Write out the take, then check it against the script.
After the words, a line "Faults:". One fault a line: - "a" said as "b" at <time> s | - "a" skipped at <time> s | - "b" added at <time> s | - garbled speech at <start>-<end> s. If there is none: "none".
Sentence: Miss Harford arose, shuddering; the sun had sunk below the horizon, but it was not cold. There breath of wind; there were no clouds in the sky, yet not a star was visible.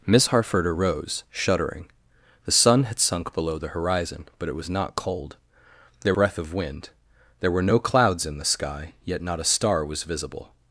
Miss Harford arose, shuddering; the sun had sunk below the horizon, but it was not cold. There breath of wind; there were no clouds in the sky, yet not a star was visible.
Faults:
none